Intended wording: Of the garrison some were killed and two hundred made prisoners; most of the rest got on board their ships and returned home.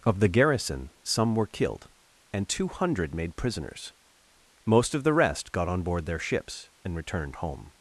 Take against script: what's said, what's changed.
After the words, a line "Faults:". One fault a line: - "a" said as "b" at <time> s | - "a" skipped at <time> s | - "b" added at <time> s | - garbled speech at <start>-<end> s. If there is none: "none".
Of the garrison some were killed and two hundred made prisoners; most of the rest got on board their ships and returned home.
Faults:
none